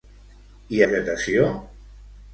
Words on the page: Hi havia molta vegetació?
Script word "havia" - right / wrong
wrong